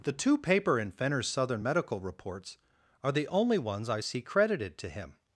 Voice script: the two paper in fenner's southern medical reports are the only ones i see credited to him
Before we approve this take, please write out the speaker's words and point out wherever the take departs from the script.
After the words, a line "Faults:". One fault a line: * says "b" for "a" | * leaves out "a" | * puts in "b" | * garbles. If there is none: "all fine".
the two paper in fenner's southern medical reports are the only ones i see credited to him
Faults:
all fine